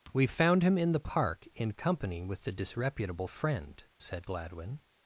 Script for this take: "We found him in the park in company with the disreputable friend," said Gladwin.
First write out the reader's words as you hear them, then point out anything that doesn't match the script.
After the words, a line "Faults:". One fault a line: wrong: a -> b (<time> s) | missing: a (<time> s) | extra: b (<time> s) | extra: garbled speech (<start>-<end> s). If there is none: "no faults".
"We found him in the park in company with the disreputable friend," said Gladwin.
Faults:
no faults